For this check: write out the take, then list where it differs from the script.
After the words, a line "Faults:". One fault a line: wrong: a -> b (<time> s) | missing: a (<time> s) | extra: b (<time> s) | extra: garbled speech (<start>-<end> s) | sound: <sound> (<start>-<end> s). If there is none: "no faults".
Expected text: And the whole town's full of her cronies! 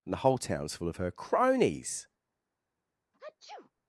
And the whole town's full of her cronies!
Faults:
sound: sneeze (3.1-3.7 s)